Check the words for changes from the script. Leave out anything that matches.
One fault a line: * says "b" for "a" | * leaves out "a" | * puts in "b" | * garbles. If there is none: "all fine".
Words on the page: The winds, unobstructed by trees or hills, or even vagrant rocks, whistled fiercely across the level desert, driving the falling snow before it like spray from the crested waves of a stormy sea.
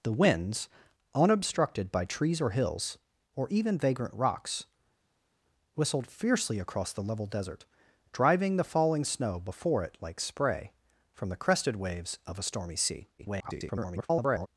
* garbles